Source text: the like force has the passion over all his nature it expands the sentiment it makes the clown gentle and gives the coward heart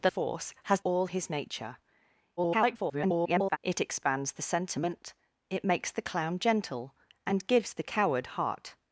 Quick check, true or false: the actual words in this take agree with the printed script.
false